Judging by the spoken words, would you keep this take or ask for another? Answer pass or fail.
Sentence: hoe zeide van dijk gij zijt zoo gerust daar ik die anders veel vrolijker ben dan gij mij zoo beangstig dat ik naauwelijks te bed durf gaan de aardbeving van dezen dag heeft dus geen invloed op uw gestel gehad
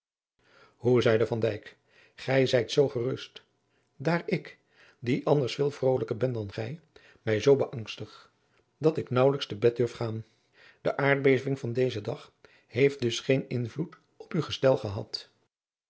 pass